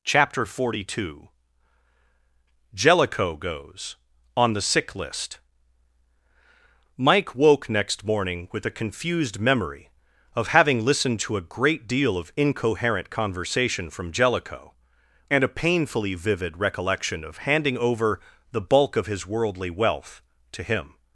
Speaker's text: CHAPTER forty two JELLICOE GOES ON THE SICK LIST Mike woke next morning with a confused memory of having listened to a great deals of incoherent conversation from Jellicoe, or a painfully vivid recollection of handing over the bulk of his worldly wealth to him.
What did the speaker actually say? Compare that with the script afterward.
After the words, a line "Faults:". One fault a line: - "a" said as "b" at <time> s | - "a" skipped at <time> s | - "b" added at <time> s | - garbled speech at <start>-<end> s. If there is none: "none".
CHAPTER forty two JELLICOE GOES ON THE SICK LIST Mike woke next morning with a confused memory of having listened to a great deal of incoherent conversation from Jellicoe, and a painfully vivid recollection of handing over the bulk of his worldly wealth to him.
Faults:
- "deals" said as "deal" at 11.9 s
- "or" said as "and" at 15.3 s